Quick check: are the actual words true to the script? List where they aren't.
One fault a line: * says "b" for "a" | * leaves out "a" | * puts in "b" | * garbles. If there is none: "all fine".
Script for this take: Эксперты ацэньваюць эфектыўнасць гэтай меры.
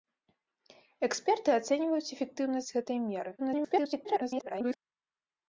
* garbles